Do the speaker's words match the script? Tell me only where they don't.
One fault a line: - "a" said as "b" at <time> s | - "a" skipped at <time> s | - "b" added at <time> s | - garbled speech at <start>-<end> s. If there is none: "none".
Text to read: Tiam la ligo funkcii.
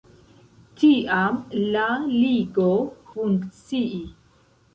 none